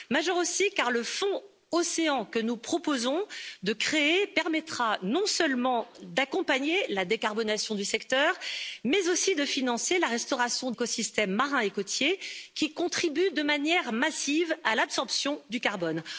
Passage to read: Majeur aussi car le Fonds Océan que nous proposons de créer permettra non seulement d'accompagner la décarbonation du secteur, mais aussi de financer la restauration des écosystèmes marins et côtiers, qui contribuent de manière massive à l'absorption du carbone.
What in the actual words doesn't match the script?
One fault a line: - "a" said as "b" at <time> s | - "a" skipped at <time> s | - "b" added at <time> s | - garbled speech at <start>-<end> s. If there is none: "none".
- "des" skipped at 10.7 s